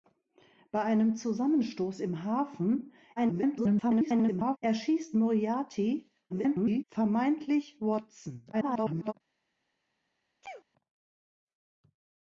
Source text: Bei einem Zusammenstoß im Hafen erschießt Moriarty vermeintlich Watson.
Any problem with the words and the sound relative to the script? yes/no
yes